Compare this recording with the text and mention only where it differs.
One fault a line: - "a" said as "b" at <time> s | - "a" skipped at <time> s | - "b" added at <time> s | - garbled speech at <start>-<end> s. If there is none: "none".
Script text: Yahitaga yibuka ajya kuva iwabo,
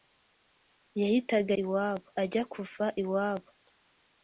- "yibuka" said as "iwabo" at 1.6 s